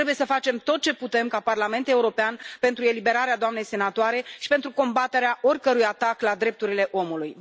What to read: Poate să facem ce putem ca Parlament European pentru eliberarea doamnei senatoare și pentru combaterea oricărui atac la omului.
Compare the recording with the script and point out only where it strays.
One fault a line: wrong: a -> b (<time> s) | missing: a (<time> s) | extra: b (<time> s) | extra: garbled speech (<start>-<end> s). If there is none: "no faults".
wrong: Poate -> Trebuie (0.0 s)
extra: tot (0.6 s)
extra: drepturile (6.3 s)